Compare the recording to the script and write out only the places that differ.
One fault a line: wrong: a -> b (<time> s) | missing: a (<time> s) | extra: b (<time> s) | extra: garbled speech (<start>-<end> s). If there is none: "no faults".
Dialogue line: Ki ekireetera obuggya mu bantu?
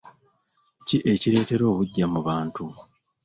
no faults